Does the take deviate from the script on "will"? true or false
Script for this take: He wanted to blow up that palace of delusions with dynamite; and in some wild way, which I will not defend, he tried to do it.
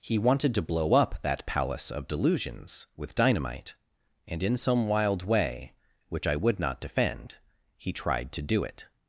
true